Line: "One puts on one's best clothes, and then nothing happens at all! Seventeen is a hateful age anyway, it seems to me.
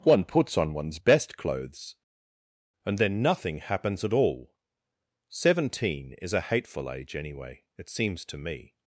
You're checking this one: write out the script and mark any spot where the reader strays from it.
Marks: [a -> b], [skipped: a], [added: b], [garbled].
"One puts on one's best clothes, and then nothing happens at all! Seventeen is a hateful age anyway, it seems to me.